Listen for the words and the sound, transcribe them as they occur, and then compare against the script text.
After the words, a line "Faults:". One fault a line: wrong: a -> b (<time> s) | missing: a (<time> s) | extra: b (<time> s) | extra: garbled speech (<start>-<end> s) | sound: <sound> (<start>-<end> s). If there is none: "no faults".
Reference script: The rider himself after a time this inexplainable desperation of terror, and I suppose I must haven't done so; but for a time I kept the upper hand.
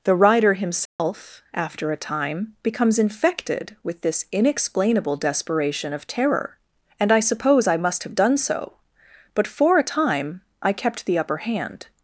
The rider himself after a time becomes infected with this inexplainable desperation of terror, and I suppose I must have done so; but for a time I kept the upper hand.
Faults:
sound: dropout (0.9-1.0 s)
extra: becomes infected with (2.6 s)
wrong: haven't -> have (8.0 s)